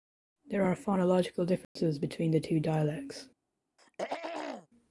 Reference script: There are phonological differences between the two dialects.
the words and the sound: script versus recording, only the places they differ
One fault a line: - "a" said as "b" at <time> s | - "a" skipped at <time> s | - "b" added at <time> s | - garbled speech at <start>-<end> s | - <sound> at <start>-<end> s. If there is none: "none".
- dropout at 1.6-1.8 s
- throat clearing at 3.8-4.7 s